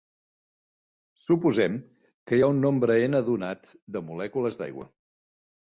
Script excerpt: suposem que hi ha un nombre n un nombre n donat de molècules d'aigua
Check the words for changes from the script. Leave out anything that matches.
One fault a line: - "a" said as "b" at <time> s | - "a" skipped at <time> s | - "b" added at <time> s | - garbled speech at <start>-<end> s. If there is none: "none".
- "un nombre n" skipped at 3.2 s